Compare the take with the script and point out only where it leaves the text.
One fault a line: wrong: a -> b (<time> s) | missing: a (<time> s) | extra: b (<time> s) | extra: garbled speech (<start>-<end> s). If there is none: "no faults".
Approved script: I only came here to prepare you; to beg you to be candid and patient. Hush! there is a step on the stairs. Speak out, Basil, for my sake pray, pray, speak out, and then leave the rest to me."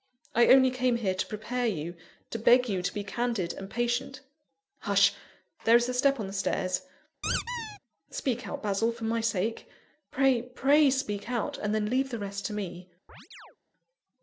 no faults